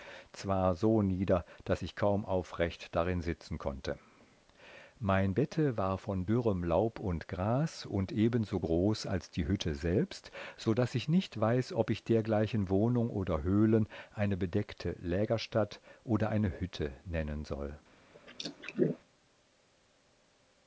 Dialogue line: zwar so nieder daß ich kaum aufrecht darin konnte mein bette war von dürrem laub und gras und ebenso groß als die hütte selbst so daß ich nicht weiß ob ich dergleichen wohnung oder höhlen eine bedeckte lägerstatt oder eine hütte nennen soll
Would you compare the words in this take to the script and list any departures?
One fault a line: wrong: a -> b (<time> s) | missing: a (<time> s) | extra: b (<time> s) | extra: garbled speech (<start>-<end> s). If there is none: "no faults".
extra: sitzen (3.2 s)